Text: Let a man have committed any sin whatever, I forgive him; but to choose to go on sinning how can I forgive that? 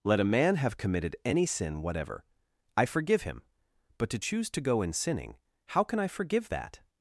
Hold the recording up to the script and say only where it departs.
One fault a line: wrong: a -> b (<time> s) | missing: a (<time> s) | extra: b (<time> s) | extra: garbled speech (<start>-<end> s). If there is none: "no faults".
wrong: on -> in (4.8 s)